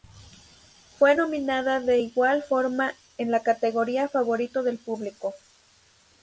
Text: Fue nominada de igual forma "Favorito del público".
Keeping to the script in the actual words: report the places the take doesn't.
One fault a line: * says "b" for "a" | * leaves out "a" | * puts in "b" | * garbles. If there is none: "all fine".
* puts in "en la categoría"